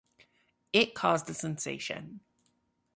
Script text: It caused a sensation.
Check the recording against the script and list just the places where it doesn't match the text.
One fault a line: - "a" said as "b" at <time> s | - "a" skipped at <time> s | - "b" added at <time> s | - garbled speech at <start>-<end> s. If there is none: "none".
none